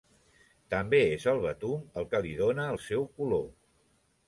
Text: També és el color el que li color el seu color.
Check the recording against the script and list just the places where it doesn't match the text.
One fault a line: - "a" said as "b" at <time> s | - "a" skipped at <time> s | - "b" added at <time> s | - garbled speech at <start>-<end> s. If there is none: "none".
- "color" said as "betum" at 1.4 s
- "color" said as "dóna" at 2.4 s